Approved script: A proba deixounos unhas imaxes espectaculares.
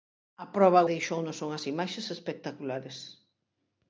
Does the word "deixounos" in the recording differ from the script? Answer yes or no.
no